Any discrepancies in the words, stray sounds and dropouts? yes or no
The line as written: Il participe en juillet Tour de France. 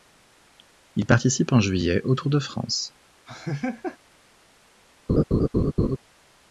yes